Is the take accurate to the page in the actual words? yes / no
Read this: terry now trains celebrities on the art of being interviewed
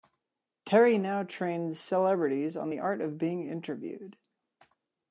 yes